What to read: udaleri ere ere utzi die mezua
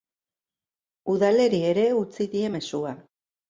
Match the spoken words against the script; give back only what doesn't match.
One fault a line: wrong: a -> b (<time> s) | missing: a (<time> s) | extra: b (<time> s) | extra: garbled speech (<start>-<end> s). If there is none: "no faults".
missing: ere (1.9 s)